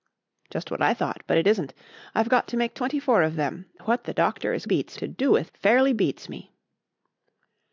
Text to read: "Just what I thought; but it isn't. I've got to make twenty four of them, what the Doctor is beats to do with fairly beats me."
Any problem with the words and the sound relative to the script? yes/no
no